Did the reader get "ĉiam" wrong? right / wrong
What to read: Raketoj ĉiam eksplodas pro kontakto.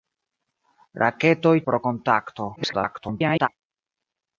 wrong